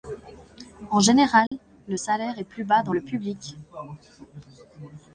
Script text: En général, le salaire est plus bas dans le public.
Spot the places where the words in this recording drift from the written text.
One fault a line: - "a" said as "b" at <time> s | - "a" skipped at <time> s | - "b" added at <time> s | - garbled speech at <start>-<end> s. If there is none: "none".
none